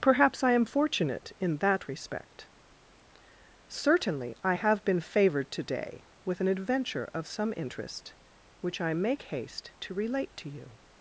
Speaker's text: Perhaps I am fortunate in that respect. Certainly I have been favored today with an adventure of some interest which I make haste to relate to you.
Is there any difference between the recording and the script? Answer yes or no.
no